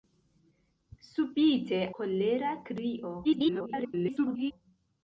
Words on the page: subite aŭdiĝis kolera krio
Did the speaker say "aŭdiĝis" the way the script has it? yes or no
no